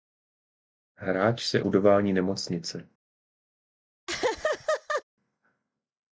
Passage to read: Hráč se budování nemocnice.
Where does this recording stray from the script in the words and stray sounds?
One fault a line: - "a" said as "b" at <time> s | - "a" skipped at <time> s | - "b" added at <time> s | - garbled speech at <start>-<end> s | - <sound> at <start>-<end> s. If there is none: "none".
- laugh at 4.1-5.0 s